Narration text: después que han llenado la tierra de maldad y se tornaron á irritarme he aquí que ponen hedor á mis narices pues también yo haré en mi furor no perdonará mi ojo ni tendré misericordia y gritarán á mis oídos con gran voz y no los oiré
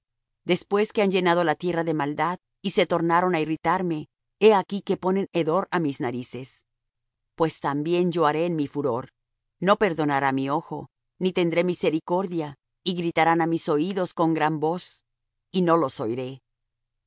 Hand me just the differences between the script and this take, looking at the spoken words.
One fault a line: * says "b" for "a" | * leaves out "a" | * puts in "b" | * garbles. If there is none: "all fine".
all fine